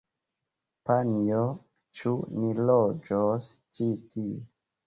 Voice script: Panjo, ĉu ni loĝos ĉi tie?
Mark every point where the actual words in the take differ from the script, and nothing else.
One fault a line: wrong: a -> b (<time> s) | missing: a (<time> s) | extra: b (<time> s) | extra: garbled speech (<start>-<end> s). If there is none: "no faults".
no faults